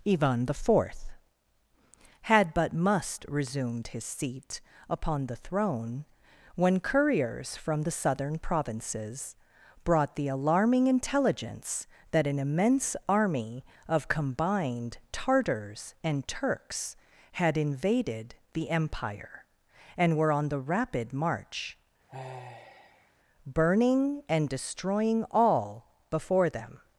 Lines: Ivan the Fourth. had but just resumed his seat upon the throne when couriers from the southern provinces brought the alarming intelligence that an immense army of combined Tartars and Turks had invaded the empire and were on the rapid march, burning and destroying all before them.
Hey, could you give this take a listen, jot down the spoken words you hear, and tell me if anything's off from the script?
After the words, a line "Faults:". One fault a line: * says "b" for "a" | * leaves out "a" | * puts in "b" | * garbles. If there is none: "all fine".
Ivan the Fourth. had but must resumed his seat upon the throne when couriers from the southern provinces brought the alarming intelligence that an immense army of combined Tartars and Turks had invaded the empire and were on the rapid march, burning and destroying all before them.
Faults:
* says "must" for "just"